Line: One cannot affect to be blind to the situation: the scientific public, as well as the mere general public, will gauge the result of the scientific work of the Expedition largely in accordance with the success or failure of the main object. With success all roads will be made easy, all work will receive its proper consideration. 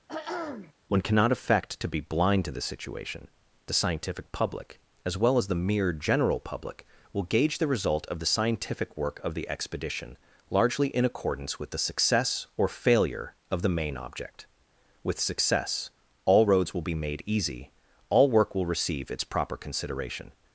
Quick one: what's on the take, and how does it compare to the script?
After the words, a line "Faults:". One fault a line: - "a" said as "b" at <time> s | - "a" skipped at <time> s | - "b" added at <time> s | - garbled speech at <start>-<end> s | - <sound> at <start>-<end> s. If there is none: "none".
One cannot affect to be blind to the situation: the scientific public, as well as the mere general public, will gauge the result of the scientific work of the Expedition largely in accordance with the success or failure of the main object. With success all roads will be made easy, all work will receive its proper consideration.
Faults:
- throat clearing at 0.1-0.7 s